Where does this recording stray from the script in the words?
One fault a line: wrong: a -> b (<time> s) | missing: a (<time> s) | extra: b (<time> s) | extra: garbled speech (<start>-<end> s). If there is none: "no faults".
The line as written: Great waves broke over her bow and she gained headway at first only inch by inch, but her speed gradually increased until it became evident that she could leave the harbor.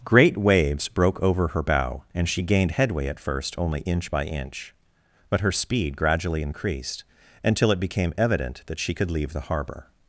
no faults